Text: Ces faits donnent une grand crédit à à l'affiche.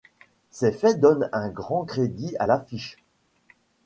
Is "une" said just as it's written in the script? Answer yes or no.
no